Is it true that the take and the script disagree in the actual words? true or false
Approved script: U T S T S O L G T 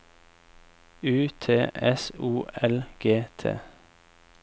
true